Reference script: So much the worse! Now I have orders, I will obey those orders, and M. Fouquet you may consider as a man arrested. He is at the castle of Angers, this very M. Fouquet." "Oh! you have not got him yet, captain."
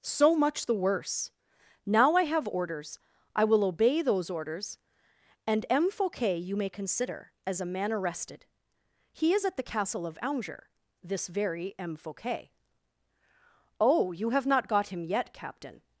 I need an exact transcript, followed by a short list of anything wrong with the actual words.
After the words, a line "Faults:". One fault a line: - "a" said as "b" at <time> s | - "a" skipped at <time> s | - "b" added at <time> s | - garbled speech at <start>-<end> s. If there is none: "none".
So much the worse! Now I have orders, I will obey those orders, and M. Fouquet you may consider as a man arrested. He is at the castle of Angers, this very M. Fouquet." "Oh! you have not got him yet, captain."
Faults:
none